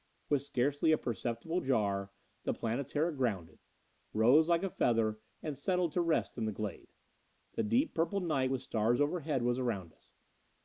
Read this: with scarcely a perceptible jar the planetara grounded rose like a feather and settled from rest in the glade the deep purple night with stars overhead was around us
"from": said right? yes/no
no